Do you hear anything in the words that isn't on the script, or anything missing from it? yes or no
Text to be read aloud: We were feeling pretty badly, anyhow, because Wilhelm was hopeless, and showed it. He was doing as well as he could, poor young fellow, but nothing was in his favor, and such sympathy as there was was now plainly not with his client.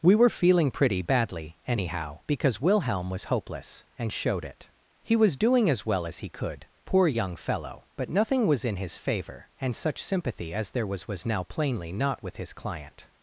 no